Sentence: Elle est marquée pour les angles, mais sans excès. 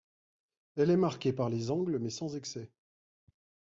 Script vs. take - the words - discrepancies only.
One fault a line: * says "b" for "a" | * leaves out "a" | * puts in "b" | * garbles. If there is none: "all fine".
* says "par" for "pour"